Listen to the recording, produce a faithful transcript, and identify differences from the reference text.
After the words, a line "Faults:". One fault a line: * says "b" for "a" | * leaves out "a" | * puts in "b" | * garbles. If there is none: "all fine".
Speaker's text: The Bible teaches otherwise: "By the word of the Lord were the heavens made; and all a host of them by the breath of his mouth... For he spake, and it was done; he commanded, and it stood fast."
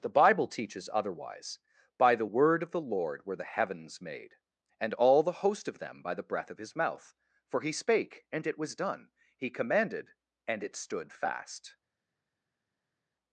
The Bible teaches otherwise: "By the word of the Lord were the heavens made; and all the host of them by the breath of his mouth... For he spake, and it was done; he commanded, and it stood fast."
Faults:
* says "the" for "a"